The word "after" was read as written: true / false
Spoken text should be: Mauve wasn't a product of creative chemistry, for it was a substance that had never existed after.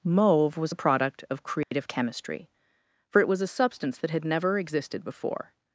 false